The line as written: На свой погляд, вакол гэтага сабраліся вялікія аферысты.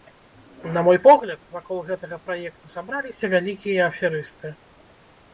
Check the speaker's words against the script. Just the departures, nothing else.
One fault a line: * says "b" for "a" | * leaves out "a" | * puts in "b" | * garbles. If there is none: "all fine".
* says "мой" for "свой"
* puts in "праекту"